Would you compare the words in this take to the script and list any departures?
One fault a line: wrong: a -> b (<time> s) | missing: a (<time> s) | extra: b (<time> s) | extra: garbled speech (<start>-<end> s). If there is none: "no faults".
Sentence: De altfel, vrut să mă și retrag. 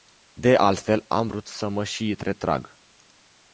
extra: am (1.1 s)